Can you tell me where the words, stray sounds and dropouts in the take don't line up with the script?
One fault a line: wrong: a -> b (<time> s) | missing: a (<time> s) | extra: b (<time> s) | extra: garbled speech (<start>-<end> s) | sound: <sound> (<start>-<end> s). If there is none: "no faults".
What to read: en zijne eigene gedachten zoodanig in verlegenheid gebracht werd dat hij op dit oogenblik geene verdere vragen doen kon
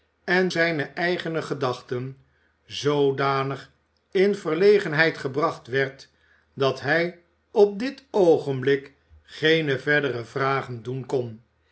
no faults